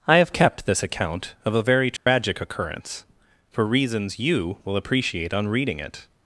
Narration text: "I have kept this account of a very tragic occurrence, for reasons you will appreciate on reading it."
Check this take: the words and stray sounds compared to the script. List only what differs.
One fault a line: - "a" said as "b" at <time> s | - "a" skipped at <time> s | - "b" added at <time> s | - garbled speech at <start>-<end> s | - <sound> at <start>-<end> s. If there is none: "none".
- dropout at 2.0-2.1 s